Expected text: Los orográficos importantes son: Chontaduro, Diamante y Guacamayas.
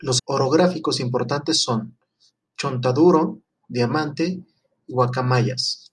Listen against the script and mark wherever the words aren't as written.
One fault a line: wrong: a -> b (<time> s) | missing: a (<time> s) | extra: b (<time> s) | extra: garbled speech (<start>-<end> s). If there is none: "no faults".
no faults